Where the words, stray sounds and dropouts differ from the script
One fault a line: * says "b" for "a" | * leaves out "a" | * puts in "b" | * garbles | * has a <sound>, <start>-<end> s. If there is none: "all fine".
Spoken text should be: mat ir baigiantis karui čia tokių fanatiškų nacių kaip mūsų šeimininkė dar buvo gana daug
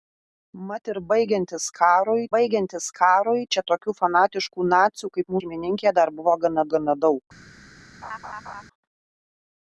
* puts in "baigiantis karui"
* leaves out "mūsų"
* puts in "gana"
* has a laugh, 8.0-8.6 s